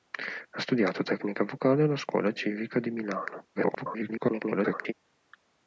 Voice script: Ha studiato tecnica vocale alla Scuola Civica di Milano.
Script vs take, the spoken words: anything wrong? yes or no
yes